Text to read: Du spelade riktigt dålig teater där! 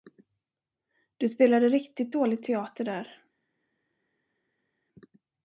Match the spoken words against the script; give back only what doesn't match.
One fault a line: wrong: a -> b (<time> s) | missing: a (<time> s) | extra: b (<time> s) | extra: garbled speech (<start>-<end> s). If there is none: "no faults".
no faults